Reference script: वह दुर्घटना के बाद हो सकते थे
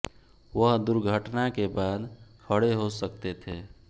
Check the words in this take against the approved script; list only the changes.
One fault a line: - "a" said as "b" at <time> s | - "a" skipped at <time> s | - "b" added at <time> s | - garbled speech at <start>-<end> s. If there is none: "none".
- "खड़े" added at 2.5 s